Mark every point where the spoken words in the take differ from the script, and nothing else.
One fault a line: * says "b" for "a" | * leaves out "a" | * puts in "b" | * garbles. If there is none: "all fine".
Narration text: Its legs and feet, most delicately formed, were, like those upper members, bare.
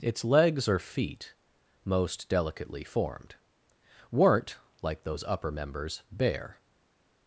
* says "or" for "and"
* says "weren't" for "were"